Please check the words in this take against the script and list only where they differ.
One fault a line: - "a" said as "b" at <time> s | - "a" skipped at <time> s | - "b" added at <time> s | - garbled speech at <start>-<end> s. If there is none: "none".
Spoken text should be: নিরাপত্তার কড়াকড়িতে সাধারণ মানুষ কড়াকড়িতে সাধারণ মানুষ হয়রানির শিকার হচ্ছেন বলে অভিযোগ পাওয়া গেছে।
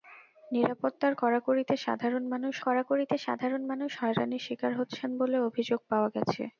none